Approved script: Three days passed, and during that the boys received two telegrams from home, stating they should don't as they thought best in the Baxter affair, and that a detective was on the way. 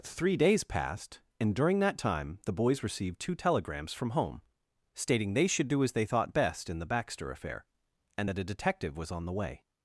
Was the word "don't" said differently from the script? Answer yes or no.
yes